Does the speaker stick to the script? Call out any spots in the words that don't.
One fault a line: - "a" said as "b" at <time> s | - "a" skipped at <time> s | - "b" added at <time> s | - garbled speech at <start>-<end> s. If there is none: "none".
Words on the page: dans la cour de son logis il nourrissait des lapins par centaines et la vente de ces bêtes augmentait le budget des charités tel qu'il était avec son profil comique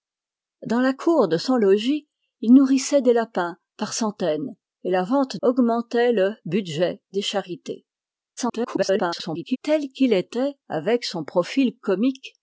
- "de ces bêtes" skipped at 5.4 s
- garbled speech at 8.4-9.6 s